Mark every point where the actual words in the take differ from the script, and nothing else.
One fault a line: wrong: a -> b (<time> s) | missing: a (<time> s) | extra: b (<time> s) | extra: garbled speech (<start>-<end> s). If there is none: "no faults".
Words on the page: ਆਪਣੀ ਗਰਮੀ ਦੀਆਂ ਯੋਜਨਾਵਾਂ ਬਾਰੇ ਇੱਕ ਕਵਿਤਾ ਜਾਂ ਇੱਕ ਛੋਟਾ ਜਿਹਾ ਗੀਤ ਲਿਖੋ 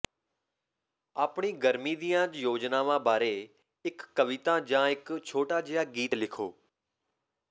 no faults